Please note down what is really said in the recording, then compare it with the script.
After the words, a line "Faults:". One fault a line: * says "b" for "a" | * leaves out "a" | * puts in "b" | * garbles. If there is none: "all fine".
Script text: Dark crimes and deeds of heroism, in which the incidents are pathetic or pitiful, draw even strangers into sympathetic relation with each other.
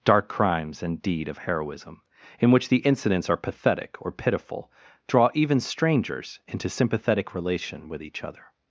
Dark crimes and deed of heroism, in which the incidents are pathetic or pitiful, draw even strangers into sympathetic relation with each other.
Faults:
* says "deed" for "deeds"